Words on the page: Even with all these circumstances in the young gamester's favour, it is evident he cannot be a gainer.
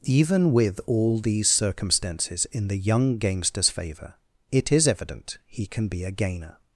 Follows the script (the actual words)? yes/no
no